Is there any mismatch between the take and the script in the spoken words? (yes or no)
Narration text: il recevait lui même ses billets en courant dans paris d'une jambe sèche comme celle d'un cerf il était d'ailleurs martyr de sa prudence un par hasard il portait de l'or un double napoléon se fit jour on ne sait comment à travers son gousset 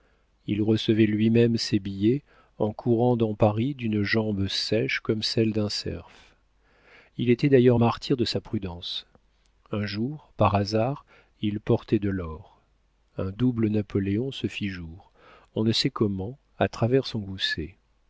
yes